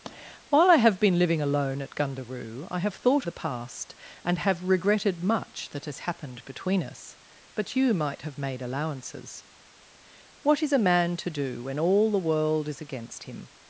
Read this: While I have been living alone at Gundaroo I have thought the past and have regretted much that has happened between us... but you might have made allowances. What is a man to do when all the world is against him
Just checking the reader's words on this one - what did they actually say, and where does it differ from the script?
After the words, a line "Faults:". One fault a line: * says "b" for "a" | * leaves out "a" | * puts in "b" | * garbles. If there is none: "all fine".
While I have been living alone at Gundaroo I have thought the past and have regretted much that has happened between us... but you might have made allowances. What is a man to do when all the world is against him
Faults:
all fine